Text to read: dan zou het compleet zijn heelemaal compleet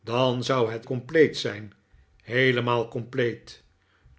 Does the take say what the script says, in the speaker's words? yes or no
yes